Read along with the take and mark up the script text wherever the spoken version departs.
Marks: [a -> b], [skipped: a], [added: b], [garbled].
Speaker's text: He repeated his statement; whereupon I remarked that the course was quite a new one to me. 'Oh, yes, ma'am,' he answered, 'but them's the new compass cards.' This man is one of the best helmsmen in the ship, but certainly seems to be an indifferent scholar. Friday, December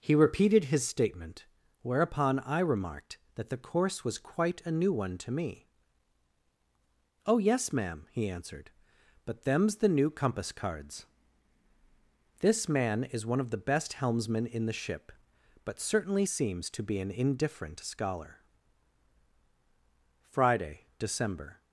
He repeated his statement; whereupon I remarked that the course was quite a new one to me. 'Oh, yes, ma'am,' he answered, 'but them's the new compass cards.' This man is one of the best helmsmen in the ship, but certainly seems to be an indifferent scholar. Friday, December